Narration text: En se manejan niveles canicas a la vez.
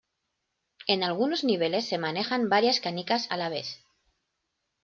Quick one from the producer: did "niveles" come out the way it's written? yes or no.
no